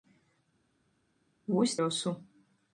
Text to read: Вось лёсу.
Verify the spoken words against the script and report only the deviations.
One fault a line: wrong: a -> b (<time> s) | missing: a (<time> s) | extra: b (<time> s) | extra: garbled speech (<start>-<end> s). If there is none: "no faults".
no faults